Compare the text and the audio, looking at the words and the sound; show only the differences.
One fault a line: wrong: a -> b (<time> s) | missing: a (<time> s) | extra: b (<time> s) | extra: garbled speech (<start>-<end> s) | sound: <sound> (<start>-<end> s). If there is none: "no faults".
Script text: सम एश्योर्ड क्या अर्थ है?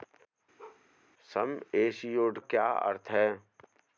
sound: bark (0.6-0.8 s)